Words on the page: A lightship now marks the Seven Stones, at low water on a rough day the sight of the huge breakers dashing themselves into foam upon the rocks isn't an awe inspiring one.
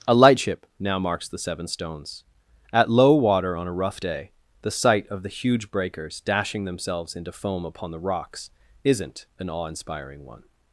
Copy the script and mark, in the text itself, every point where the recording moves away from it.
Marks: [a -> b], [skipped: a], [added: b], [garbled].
A lightship now marks the Seven Stones, at low water on a rough day the sight of the huge breakers dashing themselves into foam upon the rocks isn't an awe inspiring one.